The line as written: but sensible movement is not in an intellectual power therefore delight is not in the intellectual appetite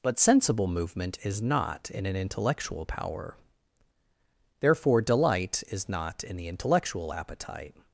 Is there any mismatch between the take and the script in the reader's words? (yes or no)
no